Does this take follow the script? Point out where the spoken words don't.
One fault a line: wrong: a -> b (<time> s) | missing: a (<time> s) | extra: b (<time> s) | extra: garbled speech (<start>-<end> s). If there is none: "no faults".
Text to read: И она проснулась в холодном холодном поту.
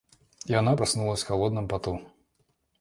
missing: холодном (1.7 s)